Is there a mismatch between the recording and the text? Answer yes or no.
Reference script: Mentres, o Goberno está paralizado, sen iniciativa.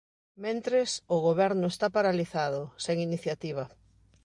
no